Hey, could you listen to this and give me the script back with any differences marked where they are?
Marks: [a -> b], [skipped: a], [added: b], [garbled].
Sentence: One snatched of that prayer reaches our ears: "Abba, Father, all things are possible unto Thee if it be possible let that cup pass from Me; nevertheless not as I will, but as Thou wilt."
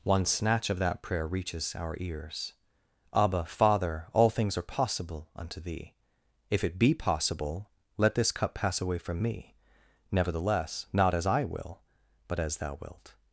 One [snatched -> snatch] of that prayer reaches our ears: "Abba, Father, all things are possible unto Thee if it be possible let [that -> this] cup pass [added: away] from Me; nevertheless not as I will, but as Thou wilt."